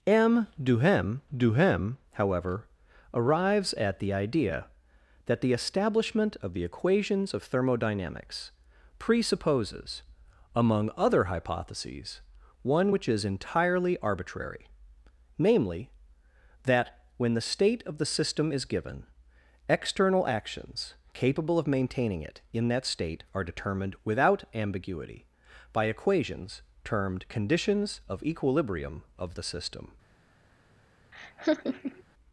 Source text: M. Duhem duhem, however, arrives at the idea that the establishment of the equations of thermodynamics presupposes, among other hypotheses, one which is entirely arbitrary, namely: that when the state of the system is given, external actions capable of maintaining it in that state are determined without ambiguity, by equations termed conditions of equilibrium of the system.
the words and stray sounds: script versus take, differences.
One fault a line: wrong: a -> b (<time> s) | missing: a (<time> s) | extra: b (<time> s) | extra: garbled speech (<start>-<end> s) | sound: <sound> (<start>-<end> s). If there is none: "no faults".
sound: laugh (31.1-32.0 s)